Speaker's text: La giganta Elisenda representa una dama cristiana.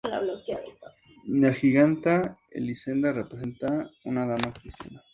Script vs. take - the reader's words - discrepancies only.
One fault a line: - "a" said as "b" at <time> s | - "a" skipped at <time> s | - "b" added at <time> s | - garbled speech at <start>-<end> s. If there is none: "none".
none